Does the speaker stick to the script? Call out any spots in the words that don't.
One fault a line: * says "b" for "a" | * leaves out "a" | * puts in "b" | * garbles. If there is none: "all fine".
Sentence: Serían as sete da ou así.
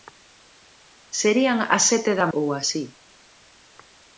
all fine